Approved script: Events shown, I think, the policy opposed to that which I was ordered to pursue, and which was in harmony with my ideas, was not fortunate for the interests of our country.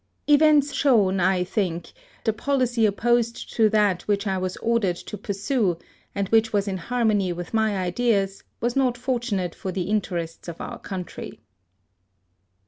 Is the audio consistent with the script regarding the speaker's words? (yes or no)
yes